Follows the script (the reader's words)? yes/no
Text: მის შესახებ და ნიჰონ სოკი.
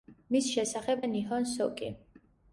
yes